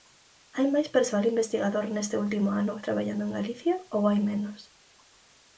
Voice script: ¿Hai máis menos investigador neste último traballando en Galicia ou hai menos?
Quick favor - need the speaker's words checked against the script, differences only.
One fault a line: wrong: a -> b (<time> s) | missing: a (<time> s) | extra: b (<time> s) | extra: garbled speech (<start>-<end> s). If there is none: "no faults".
wrong: menos -> persoal (0.9 s)
extra: ano (2.6 s)